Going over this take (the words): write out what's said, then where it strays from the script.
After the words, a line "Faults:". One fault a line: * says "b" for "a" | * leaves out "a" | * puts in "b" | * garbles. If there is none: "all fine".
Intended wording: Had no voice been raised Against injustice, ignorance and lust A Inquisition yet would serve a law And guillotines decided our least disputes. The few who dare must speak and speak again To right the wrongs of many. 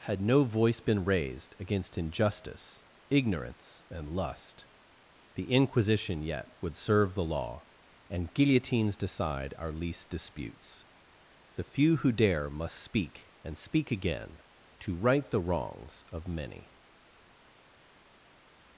Had no voice been raised Against injustice, ignorance and lust The Inquisition yet would serve the law And guillotines decide our least disputes. The few who dare must speak and speak again To right the wrongs of many.
Faults:
* says "The" for "A"
* says "the" for "a"
* says "decide" for "decided"